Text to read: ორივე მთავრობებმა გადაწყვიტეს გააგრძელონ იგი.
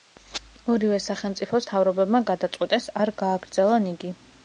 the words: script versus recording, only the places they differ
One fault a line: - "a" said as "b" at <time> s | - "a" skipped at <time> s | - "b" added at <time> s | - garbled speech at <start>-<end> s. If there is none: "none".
- "სახელმწიფოს" added at 1.1 s
- "არ" added at 3.1 s